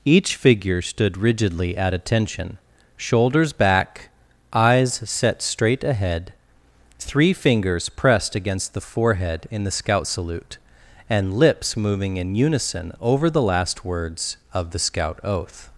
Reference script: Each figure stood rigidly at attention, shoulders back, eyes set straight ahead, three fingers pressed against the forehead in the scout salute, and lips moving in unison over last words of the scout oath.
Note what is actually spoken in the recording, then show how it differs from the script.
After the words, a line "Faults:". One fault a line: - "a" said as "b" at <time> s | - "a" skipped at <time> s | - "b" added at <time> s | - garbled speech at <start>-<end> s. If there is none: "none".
Each figure stood rigidly at attention, shoulders back, eyes set straight ahead, three fingers pressed against the forehead in the scout salute, and lips moving in unison over the last words of the scout oath.
Faults:
- "the" added at 13.3 s